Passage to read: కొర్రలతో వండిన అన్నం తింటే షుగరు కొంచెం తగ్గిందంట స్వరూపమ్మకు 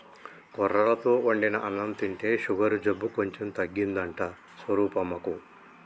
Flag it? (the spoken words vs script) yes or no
yes